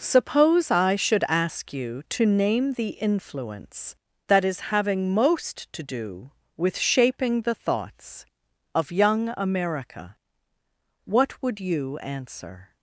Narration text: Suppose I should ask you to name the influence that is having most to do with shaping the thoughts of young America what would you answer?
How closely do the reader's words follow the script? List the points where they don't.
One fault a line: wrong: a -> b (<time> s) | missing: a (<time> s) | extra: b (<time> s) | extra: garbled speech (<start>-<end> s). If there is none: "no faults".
no faults